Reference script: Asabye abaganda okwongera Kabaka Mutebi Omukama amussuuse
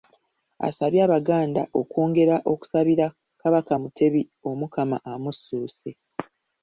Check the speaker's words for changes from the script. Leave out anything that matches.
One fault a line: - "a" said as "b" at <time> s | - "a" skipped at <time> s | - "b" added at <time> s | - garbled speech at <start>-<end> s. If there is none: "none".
- "okusabira" added at 2.5 s